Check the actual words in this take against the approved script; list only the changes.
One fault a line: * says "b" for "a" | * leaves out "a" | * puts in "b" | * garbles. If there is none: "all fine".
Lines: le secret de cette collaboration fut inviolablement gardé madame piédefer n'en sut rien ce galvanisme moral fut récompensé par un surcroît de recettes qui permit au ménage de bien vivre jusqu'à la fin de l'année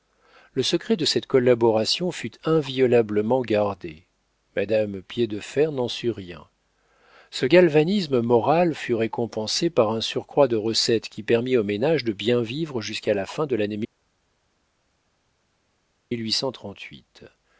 all fine